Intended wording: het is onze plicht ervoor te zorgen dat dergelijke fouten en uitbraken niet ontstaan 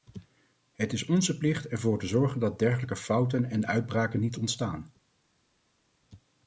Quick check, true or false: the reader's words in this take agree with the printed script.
true